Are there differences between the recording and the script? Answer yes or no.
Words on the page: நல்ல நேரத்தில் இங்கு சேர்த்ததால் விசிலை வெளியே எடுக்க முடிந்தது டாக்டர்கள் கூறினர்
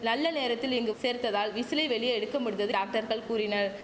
no